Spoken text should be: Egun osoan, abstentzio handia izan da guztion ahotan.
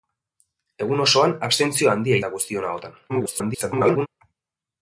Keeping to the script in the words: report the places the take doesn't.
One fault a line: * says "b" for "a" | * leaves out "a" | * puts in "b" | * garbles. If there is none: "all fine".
* leaves out "izan"
* garbles